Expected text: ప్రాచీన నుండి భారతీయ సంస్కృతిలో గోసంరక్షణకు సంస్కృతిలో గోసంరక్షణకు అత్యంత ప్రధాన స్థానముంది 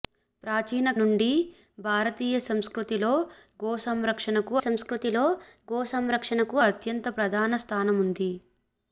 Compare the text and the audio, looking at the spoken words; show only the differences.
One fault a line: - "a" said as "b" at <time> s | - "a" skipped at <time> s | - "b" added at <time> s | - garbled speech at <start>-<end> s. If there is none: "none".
none